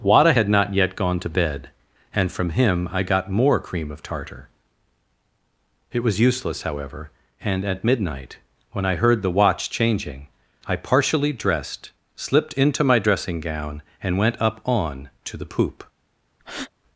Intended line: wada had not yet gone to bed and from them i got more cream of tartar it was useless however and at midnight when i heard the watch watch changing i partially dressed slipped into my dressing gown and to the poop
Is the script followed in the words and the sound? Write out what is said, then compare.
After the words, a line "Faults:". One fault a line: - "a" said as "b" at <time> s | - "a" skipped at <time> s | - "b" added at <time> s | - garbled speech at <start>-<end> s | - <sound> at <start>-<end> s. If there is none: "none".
wada had not yet gone to bed and from him i got more cream of tartar it was useless however and at midnight when i heard the watch changing i partially dressed slipped into my dressing gown and went up on to the poop
Faults:
- "them" said as "him" at 2.5 s
- "watch" skipped at 9.7 s
- "went up on" added at 14.2 s
- breath at 16.4-16.7 s